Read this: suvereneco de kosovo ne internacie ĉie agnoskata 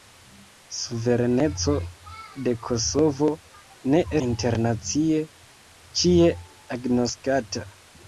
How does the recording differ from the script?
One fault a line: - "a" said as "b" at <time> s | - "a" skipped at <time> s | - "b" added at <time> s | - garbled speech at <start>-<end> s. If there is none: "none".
none